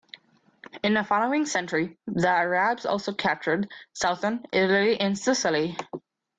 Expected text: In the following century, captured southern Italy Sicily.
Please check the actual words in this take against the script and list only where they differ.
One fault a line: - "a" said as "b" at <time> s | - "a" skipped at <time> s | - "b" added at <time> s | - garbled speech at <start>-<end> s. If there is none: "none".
- "the Arabs also" added at 2.1 s
- "and" added at 5.0 s